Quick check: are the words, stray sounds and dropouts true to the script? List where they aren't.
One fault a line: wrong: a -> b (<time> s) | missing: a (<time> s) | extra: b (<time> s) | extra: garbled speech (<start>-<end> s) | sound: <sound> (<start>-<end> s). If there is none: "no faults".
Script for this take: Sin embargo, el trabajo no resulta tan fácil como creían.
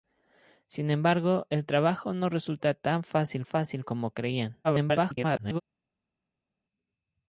extra: fácil (3.4 s)
extra: garbled speech (4.6-5.6 s)